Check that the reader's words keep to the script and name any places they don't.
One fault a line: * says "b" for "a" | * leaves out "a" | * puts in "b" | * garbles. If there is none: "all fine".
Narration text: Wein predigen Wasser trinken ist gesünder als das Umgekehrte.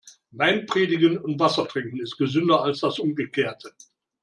* puts in "und"